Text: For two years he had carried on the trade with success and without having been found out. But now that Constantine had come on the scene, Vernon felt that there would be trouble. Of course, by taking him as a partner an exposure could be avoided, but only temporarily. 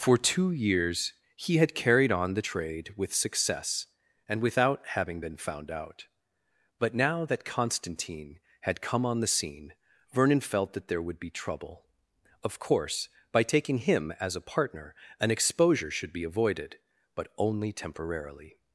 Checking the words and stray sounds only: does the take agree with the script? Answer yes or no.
no